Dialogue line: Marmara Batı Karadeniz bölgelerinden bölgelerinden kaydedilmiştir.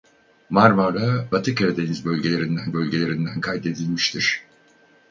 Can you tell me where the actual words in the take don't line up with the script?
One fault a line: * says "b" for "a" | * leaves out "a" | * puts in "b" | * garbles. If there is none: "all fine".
all fine